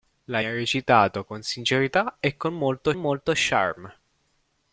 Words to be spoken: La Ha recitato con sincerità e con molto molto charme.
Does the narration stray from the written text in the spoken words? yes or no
no